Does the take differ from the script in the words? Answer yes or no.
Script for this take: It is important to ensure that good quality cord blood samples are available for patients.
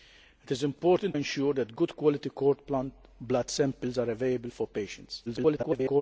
yes